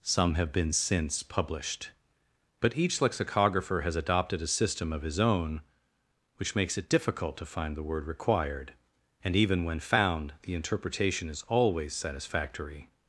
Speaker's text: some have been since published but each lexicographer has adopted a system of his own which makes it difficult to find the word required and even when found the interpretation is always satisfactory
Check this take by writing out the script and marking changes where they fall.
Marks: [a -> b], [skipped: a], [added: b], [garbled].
some have been since published but each lexicographer has adopted a system of his own which makes it difficult to find the word required and even when found the interpretation is always satisfactory